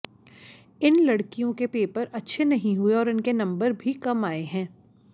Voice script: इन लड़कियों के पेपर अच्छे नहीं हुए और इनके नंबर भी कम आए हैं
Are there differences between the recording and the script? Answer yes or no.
no